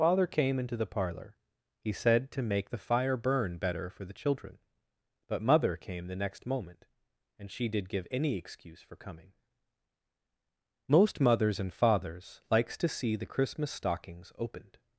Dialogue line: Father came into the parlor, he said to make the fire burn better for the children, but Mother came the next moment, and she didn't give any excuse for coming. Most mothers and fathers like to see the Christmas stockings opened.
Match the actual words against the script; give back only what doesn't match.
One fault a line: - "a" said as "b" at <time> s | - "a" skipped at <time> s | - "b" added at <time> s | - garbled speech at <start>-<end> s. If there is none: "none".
- "didn't" said as "did" at 7.7 s
- "like" said as "likes" at 12.5 s